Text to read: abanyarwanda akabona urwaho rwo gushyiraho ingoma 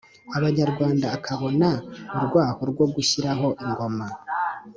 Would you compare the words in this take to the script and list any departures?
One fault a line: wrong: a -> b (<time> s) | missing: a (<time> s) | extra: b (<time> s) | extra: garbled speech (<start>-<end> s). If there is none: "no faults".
no faults